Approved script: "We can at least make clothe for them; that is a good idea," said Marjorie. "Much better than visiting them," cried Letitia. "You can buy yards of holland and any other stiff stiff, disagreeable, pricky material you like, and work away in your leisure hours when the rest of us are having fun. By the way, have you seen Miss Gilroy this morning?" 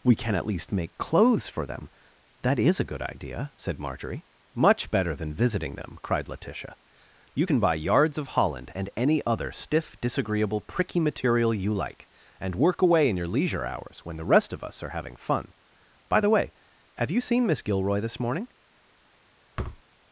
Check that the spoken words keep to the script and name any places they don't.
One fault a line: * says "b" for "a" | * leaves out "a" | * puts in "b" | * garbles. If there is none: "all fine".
* says "clothes" for "clothe"
* leaves out "stiff"